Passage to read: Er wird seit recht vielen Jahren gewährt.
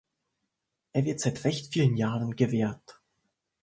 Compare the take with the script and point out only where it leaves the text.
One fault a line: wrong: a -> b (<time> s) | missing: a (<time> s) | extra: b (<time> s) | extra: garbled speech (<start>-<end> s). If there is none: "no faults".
no faults